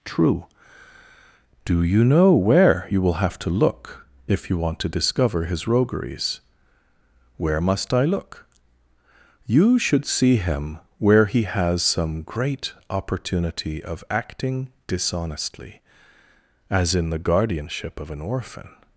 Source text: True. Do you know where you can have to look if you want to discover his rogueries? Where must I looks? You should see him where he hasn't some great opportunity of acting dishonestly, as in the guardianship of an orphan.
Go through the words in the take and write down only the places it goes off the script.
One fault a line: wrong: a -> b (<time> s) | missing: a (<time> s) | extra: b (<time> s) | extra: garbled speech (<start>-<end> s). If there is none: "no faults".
wrong: can -> will (3.0 s)
wrong: looks -> look (8.1 s)
wrong: hasn't -> has (11.4 s)